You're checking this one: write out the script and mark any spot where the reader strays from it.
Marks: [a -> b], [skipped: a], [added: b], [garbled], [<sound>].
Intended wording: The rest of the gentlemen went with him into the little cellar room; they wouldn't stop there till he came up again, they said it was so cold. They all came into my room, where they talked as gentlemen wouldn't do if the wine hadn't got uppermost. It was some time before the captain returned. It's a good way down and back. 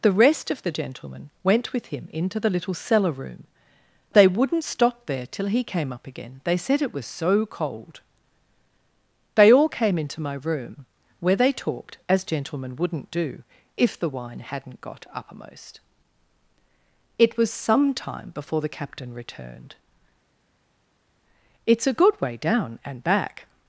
The rest of the gentlemen went with him into the little cellar room; they wouldn't stop there till he came up again, they said it was so cold. They all came into my room, where they talked as gentlemen wouldn't do if the wine hadn't got uppermost. It was some time before the captain returned. It's a good way down and back.